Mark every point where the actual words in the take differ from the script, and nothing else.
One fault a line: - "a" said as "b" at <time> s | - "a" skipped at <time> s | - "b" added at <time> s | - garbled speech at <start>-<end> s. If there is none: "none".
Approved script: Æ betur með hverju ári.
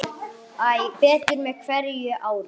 none